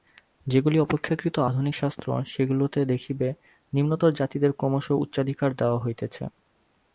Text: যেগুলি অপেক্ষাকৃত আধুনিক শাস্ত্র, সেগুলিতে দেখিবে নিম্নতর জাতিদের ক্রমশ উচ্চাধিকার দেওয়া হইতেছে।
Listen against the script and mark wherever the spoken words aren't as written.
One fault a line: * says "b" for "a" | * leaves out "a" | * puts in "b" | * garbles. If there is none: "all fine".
all fine